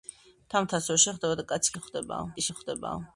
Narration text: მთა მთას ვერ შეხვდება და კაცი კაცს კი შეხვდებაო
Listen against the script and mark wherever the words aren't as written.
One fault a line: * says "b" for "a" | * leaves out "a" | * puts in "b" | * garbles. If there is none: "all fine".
* says "შეხვდებაო" for "კაცს"